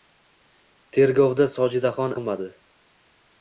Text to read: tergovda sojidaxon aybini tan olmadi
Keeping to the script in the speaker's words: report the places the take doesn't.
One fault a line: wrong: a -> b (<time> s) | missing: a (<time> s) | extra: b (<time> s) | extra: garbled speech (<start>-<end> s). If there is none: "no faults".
missing: aybini tan (2.2 s)